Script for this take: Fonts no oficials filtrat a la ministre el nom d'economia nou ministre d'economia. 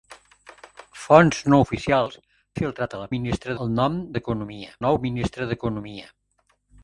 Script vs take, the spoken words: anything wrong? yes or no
no